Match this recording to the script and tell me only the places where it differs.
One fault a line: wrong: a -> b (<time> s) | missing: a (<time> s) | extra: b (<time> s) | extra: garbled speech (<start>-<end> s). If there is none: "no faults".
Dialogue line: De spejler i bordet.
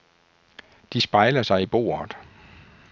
extra: sig (1.4 s)